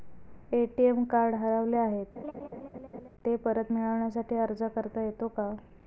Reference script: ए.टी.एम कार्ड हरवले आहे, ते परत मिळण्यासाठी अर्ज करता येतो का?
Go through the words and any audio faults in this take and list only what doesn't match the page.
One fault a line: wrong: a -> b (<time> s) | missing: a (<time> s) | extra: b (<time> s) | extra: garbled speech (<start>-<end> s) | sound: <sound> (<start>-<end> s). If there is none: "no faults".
sound: laugh (2.2-3.1 s)